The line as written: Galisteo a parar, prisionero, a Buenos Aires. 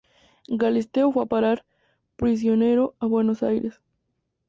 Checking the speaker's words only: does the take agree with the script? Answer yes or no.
no